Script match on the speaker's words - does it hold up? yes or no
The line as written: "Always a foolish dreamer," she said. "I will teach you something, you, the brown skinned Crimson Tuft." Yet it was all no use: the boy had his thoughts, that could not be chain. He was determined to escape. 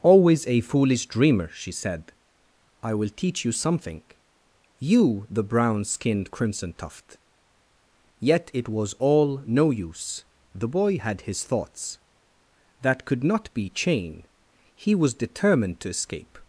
yes